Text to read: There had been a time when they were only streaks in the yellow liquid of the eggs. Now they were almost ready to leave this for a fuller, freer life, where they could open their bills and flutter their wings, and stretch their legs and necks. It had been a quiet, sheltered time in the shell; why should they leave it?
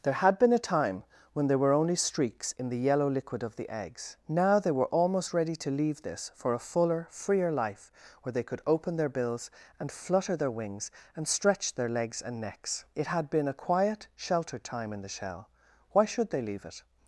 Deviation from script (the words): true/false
true